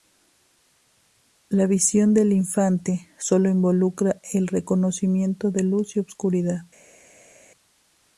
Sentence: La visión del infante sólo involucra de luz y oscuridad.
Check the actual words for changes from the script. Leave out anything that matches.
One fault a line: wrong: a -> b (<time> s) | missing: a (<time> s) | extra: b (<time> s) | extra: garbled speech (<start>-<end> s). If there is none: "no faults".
extra: el reconocimiento (4.3 s)